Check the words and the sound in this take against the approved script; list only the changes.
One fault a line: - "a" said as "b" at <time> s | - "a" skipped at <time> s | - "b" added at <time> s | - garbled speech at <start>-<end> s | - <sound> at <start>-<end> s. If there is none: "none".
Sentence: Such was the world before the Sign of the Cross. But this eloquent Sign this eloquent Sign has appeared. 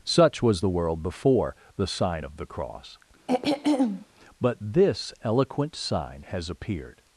- throat clearing at 3.3-4.1 s
- "this eloquent Sign" skipped at 6.2 s